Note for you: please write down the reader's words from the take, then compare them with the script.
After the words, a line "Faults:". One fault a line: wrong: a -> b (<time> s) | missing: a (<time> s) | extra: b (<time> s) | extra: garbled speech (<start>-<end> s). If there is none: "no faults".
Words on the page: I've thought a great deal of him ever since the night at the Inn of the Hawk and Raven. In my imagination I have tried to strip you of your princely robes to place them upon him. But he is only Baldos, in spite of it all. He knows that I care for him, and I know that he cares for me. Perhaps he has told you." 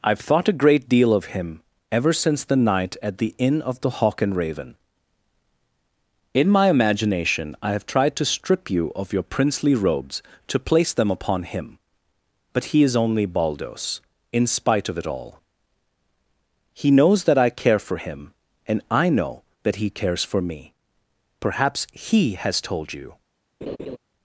I've thought a great deal of him ever since the night at the Inn of the Hawk and Raven. In my imagination I have tried to strip you of your princely robes to place them upon him. But he is only Baldos, in spite of it all. He knows that I care for him, and I know that he cares for me. Perhaps he has told you."
Faults:
no faults